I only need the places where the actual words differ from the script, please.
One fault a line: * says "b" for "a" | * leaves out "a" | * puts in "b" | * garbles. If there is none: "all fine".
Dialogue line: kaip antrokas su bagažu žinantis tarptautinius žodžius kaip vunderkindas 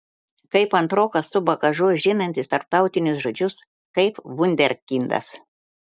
all fine